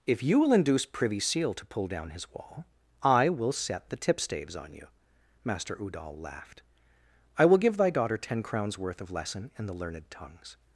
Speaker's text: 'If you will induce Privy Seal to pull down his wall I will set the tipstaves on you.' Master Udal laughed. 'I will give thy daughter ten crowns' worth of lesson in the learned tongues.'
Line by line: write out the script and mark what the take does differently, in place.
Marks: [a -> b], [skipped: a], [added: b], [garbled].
'If you will induce Privy Seal to pull down his wall I will set the tipstaves on you.' Master Udal laughed. 'I will give thy daughter ten crowns' worth of lesson in the learned tongues.'